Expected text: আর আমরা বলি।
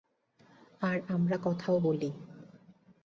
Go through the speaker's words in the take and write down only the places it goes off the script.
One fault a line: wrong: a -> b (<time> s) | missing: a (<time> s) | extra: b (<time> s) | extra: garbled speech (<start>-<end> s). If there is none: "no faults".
extra: কথাও (1.4 s)